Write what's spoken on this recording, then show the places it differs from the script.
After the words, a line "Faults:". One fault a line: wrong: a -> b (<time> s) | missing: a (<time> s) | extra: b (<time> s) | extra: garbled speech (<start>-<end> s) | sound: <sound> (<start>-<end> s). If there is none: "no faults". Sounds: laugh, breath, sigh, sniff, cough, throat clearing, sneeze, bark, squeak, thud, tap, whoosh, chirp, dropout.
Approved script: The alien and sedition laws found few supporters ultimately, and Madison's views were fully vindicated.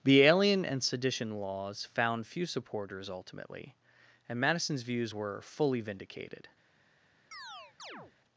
The alien and sedition laws found few supporters ultimately, and Madison's views were fully vindicated.
Faults:
sound: chirp (7.3-8.1 s)